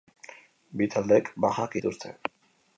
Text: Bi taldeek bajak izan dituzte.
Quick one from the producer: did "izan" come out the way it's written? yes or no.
no